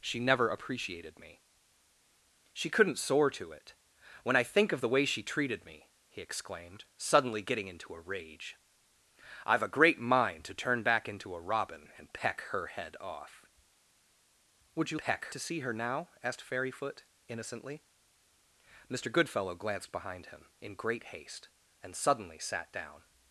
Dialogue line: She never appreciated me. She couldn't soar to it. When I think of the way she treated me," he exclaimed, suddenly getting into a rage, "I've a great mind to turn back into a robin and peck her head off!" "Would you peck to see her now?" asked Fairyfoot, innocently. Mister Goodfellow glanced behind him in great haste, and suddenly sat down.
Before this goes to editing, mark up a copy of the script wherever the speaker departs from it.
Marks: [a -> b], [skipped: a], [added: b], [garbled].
She never appreciated me. She couldn't soar to it. When I think of the way she treated me," he exclaimed, suddenly getting into a rage, "I've a great mind to turn back into a robin and peck her head off!" "Would you peck to see her now?" asked Fairyfoot, innocently. Mister Goodfellow glanced behind him in great haste, and suddenly sat down.